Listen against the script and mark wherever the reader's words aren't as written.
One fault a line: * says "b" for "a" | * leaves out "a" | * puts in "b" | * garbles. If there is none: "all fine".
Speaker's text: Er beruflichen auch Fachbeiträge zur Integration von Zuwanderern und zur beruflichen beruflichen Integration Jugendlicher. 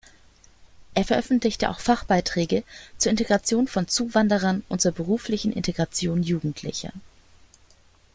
* says "veröffentlichte" for "beruflichen"
* leaves out "beruflichen"